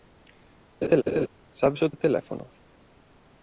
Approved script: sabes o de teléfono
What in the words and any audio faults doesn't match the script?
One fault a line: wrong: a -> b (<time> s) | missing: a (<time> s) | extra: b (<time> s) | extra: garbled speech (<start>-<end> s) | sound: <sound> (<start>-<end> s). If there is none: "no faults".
sound: laugh (0.8-1.3 s)